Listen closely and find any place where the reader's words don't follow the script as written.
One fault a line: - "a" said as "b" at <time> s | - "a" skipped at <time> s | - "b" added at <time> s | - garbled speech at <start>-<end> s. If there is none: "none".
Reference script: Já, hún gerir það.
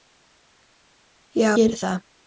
- "hún" skipped at 1.5 s